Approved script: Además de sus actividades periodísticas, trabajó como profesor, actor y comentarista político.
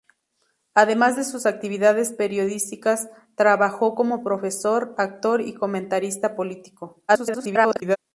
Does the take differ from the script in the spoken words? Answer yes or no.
yes